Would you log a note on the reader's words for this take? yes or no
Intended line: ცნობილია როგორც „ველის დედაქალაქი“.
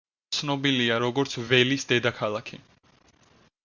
no